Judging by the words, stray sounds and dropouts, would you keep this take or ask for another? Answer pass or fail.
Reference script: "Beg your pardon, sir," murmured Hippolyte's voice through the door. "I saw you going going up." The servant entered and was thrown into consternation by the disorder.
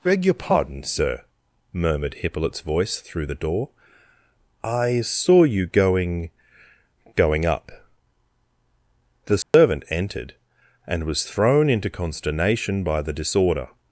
fail